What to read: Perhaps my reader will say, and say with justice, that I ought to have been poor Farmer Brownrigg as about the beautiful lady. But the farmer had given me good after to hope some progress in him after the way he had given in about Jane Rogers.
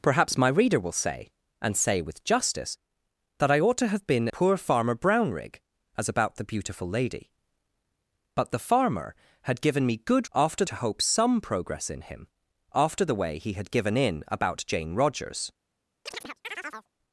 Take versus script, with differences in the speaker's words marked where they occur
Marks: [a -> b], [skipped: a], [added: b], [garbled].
Perhaps my reader will say, and say with justice, that I ought to have been poor Farmer Brownrigg as about the beautiful lady. But the farmer had given me good after to hope some progress in him after the way he had given in about Jane Rogers.